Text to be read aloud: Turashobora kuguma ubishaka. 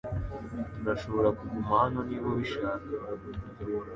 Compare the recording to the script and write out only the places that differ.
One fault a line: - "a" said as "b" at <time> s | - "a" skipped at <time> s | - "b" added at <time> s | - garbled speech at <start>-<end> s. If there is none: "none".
- "hano niba" added at 1.8 s